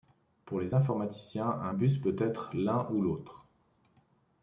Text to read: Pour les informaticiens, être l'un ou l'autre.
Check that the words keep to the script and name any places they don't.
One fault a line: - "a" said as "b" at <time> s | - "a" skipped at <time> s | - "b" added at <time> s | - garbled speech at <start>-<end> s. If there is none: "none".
- "un bus peut" added at 1.5 s